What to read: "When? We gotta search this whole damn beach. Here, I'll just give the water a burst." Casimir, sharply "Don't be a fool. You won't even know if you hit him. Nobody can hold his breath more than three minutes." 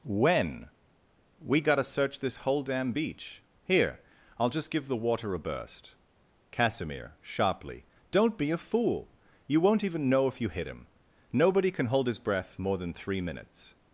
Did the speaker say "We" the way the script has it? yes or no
yes